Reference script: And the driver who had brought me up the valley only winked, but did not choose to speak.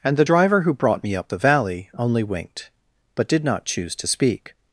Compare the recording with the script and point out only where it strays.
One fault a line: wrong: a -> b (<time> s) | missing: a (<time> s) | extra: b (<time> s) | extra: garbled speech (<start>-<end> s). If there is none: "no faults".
missing: had (0.7 s)